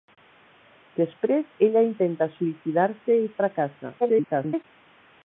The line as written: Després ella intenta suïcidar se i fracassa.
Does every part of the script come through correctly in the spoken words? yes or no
no